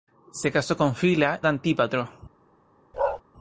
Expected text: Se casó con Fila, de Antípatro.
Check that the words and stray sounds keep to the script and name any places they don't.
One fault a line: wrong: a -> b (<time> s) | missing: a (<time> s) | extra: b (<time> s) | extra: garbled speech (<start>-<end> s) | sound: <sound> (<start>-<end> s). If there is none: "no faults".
sound: bark (2.9-3.2 s)